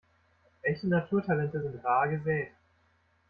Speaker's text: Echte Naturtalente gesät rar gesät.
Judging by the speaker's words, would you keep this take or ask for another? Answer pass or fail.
fail